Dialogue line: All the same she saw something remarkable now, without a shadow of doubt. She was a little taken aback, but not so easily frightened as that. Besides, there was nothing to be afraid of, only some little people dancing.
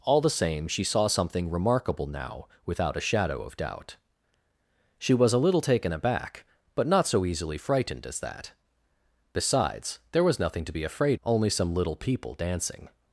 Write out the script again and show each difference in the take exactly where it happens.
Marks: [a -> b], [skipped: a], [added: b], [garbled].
All the same she saw something remarkable now, without a shadow of doubt. She was a little taken aback, but not so easily frightened as that. Besides, there was nothing to be afraid [skipped: of,] only some little people dancing.